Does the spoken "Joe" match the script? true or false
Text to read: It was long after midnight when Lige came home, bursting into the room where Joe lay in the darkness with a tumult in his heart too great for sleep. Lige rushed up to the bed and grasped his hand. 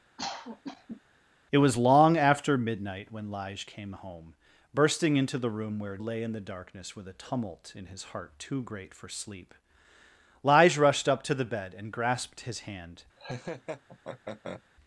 false